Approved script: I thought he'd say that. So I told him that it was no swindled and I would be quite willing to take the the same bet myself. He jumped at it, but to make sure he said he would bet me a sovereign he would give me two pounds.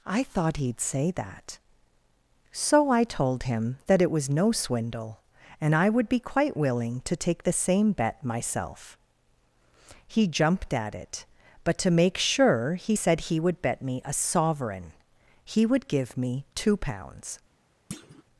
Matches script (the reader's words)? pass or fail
fail